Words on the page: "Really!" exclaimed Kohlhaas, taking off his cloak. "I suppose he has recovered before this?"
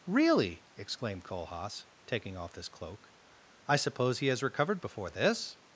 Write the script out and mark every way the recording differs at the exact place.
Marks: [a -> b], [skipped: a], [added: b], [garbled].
"Really!" exclaimed Kohlhaas, taking off his cloak. "I suppose he has recovered before this?"